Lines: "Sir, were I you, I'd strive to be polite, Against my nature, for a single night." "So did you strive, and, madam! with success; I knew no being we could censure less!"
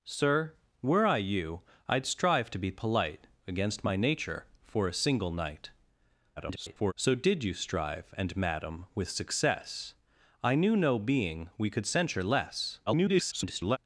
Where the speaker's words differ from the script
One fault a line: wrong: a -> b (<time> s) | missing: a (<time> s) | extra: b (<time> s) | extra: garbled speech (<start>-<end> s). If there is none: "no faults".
extra: garbled speech (6.4-6.9 s)
extra: garbled speech (12.9-13.8 s)